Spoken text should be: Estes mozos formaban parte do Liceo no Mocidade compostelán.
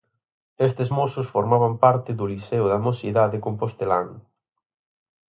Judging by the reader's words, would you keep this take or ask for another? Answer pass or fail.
fail